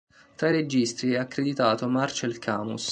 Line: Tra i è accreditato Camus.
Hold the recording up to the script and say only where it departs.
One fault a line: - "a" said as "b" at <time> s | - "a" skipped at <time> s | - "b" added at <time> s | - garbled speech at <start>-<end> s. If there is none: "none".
- "registi" added at 0.5 s
- "Marcel" added at 1.9 s